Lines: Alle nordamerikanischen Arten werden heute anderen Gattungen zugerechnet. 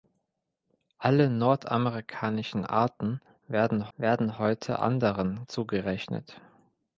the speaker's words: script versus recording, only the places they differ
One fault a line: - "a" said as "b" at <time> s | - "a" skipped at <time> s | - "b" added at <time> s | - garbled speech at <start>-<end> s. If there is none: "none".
- "werden" added at 4.0 s
- "Gattungen" skipped at 5.4 s